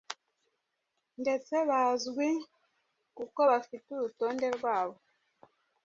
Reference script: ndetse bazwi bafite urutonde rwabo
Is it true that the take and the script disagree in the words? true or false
true